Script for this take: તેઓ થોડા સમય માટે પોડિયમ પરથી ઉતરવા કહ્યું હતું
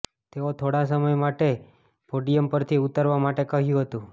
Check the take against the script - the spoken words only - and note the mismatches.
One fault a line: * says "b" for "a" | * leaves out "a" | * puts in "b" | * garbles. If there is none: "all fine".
* puts in "માટે"